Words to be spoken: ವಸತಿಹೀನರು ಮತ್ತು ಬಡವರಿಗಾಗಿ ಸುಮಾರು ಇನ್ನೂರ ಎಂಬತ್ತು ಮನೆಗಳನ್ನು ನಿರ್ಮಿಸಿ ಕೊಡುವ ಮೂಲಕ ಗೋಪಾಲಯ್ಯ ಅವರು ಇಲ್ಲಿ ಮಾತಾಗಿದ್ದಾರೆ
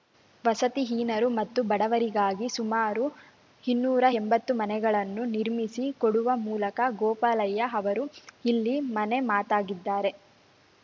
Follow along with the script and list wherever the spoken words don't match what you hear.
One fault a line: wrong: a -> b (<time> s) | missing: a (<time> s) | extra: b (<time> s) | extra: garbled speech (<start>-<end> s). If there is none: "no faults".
extra: ಮನೆ (8.9 s)